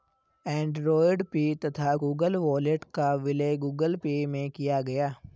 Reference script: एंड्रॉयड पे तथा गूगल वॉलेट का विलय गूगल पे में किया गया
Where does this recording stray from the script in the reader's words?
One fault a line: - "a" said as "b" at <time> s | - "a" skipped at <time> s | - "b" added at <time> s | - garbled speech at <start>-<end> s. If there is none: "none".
none